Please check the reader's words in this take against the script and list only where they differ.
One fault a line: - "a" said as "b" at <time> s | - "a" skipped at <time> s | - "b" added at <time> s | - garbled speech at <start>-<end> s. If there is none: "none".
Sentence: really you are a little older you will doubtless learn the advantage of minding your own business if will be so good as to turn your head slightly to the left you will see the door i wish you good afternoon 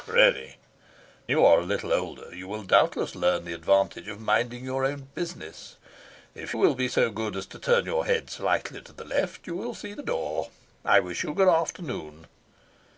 none